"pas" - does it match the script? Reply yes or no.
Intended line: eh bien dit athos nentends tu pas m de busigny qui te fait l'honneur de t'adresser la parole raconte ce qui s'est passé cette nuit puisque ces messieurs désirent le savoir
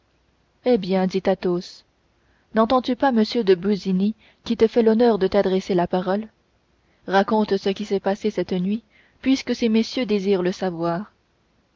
yes